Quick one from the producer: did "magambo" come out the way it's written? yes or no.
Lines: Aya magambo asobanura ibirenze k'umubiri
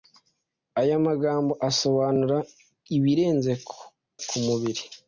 yes